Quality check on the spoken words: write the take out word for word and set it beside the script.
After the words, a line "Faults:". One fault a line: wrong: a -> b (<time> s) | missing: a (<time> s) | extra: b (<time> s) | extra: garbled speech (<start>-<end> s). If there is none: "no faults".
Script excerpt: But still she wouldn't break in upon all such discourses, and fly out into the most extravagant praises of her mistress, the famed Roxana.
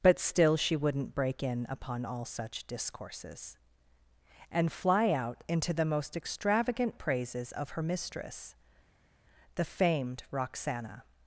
But still she wouldn't break in upon all such discourses, and fly out into the most extravagant praises of her mistress, the famed Roxana.
Faults:
no faults